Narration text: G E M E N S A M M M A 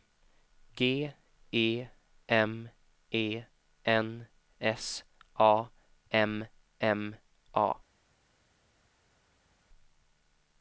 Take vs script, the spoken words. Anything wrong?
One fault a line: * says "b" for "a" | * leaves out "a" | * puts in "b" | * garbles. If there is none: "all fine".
* leaves out "M"